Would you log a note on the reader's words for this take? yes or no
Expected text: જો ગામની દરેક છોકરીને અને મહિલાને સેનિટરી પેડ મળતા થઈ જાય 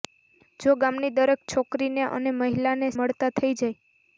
yes